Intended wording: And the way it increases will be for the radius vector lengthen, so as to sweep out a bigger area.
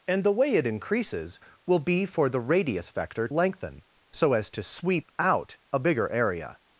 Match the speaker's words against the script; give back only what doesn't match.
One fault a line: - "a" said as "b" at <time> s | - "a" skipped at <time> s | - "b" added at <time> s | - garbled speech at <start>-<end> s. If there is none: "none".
none